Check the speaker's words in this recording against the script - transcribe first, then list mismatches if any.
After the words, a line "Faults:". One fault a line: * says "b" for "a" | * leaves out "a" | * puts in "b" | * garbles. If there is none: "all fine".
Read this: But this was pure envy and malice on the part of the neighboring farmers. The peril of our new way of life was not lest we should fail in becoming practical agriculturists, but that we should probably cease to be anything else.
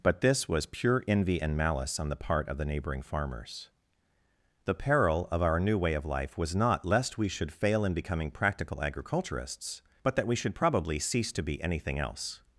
But this was pure envy and malice on the part of the neighboring farmers. The peril of our new way of life was not lest we should fail in becoming practical agriculturists, but that we should probably cease to be anything else.
Faults:
all fine